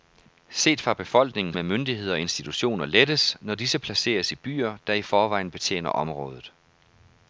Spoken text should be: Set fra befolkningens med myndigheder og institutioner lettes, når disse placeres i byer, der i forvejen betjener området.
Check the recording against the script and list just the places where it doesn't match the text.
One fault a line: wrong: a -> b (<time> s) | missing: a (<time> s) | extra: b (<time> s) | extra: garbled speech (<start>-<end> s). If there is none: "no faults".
no faults